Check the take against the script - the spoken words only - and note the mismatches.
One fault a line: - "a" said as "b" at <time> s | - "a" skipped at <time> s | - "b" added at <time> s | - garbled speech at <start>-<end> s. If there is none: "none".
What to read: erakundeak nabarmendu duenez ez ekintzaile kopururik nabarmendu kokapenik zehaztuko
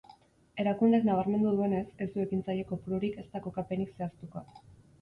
- "du" added at 2.2 s
- "nabarmendu" said as "ezta" at 3.3 s